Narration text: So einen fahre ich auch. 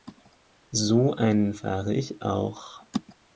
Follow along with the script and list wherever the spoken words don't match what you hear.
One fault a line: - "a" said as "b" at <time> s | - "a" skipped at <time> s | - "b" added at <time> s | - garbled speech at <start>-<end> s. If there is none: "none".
none